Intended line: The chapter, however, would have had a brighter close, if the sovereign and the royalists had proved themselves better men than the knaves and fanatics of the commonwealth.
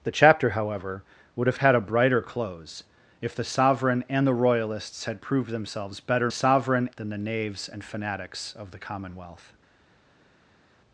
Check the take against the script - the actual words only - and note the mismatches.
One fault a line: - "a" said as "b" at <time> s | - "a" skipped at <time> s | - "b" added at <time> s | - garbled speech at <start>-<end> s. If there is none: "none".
- "men" said as "sovereign" at 6.3 s